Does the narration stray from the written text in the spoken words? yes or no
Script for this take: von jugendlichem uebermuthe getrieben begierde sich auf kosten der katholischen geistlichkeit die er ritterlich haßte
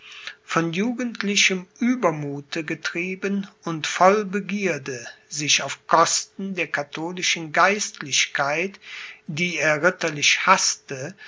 yes